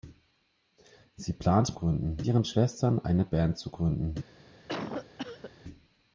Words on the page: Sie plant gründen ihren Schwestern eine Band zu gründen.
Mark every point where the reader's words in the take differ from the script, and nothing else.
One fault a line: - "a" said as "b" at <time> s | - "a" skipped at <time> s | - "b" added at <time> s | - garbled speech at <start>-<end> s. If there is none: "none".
none